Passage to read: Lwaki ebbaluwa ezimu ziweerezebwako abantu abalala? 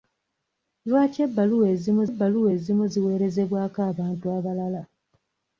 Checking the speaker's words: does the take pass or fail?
fail